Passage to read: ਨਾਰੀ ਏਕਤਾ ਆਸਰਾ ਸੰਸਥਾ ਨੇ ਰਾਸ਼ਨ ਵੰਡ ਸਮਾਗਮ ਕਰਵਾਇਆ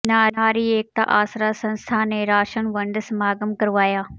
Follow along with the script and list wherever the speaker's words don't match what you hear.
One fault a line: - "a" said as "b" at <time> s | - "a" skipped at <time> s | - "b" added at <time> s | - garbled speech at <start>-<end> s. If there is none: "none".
none